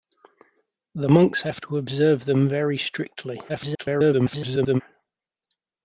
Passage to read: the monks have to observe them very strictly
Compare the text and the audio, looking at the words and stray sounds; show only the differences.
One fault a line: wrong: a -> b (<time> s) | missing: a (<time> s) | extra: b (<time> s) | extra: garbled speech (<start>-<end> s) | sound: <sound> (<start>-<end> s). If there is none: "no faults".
extra: garbled speech (3.5-4.8 s)